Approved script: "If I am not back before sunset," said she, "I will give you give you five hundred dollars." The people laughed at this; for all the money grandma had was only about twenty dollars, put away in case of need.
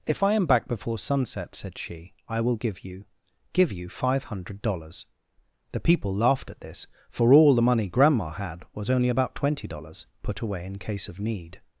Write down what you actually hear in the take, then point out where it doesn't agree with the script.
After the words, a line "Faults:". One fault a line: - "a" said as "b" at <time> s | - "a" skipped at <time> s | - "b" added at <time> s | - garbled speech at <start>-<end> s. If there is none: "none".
"If I am back before sunset," said she, "I will give you give you five hundred dollars." The people laughed at this; for all the money grandma had was only about twenty dollars, put away in case of need.
Faults:
- "not" skipped at 0.5 s